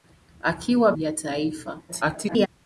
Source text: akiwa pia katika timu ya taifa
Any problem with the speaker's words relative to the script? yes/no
yes